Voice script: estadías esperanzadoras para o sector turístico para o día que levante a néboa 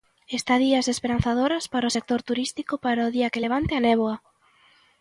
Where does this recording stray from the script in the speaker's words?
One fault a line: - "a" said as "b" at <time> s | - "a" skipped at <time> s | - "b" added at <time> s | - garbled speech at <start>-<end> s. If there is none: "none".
none